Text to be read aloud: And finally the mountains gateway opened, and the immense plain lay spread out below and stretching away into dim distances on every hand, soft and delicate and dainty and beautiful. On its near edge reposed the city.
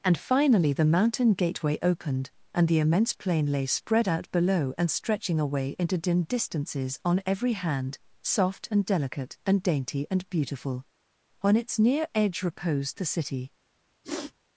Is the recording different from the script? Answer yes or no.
yes